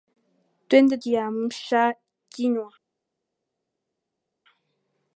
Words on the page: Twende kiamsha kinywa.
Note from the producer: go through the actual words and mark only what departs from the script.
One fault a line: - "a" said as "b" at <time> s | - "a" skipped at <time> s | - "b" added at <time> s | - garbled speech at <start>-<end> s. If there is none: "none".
none